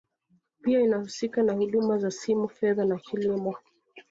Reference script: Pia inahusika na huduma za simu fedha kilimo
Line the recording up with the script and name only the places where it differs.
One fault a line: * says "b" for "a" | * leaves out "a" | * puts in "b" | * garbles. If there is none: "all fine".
* puts in "na"